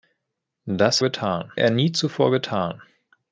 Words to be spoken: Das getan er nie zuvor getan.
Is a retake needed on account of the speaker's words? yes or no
no